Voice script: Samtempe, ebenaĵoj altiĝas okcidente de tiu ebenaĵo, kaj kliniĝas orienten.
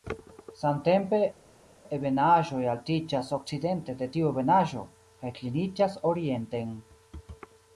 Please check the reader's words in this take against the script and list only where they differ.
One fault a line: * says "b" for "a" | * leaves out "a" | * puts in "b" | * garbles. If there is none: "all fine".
all fine